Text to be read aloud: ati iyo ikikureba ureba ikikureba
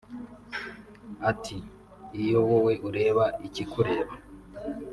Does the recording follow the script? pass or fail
fail